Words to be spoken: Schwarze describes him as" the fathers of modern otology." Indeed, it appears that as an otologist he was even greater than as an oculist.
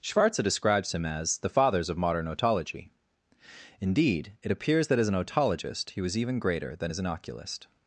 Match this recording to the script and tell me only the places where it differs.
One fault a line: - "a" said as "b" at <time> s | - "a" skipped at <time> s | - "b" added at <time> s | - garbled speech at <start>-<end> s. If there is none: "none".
none